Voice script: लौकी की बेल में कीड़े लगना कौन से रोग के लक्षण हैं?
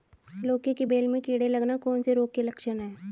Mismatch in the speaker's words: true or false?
false